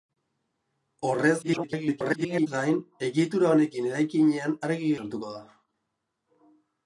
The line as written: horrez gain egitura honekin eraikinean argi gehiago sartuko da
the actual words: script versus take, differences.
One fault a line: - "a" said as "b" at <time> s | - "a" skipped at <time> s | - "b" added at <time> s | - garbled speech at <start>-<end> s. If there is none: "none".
- garbled speech at 1.4-2.5 s
- "gehiago" skipped at 4.9 s